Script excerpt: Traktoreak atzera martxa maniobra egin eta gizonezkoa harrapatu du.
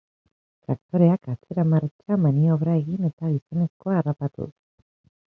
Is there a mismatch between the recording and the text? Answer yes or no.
no